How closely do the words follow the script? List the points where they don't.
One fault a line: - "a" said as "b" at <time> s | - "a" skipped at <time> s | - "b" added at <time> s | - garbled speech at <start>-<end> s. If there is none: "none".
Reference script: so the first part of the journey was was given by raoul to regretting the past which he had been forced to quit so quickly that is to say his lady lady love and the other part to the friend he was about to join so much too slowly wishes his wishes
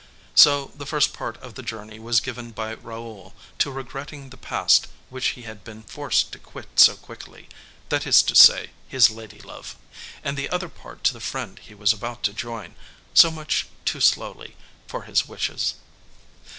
- "was" skipped at 2.2 s
- "lady" skipped at 9.4 s
- "wishes" said as "for" at 14.9 s